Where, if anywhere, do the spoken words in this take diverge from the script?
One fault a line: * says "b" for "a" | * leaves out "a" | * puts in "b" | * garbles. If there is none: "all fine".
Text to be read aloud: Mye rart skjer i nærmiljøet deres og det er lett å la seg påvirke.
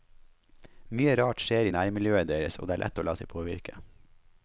all fine